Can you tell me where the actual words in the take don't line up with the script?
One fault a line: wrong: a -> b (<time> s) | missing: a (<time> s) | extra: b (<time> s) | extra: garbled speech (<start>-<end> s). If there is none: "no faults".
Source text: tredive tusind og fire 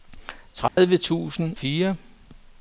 missing: og (1.6 s)